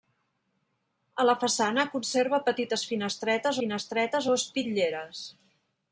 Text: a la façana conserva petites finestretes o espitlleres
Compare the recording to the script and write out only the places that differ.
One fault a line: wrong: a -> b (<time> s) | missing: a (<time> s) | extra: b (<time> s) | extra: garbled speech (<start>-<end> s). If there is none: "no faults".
extra: finestretes (3.6 s)